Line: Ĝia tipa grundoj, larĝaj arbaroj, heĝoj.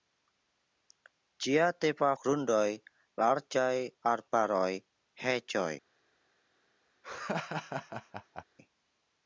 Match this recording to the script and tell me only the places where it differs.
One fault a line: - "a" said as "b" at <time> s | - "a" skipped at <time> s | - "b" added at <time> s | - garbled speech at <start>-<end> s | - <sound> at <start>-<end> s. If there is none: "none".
- laugh at 7.0-8.4 s